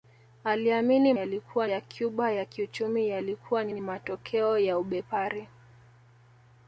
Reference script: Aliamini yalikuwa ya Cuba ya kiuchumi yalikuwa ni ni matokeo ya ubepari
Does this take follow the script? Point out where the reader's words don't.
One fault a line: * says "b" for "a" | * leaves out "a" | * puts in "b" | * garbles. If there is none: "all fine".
all fine